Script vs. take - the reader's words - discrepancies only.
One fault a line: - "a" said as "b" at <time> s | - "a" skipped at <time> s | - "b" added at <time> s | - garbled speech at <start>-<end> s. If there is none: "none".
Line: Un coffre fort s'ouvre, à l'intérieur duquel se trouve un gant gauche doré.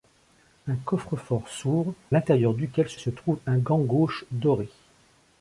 - "à" skipped at 1.9 s
- "se" added at 3.0 s